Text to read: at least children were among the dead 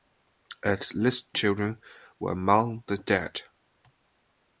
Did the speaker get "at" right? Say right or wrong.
right